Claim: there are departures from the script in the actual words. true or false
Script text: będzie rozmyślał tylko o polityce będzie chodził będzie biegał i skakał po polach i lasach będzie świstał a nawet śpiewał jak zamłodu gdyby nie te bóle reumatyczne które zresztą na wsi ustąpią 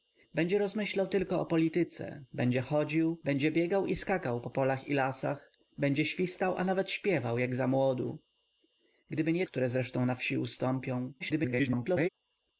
true